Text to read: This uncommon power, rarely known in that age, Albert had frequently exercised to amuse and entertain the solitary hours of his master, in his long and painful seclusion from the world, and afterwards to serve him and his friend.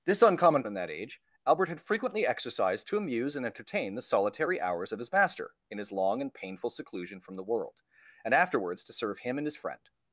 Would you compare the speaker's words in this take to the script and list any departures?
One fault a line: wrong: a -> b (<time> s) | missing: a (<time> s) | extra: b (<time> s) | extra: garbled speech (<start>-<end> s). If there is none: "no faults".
missing: power rarely known (0.6 s)